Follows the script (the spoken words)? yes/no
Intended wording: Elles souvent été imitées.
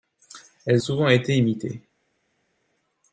yes